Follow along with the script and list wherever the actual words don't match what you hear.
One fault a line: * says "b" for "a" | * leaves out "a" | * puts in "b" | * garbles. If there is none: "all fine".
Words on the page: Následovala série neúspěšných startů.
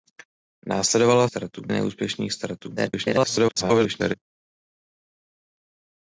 * says "startů" for "série"
* garbles